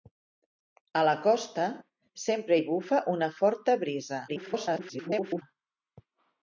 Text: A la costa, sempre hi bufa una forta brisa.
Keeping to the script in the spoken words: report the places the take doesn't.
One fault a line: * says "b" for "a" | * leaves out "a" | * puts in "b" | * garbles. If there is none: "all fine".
* garbles